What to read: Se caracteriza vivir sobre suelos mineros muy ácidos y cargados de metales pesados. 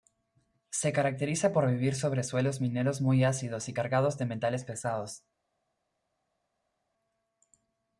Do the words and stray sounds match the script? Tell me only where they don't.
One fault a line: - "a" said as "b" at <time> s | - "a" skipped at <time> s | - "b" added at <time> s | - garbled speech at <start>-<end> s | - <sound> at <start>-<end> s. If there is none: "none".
- "por" added at 1.5 s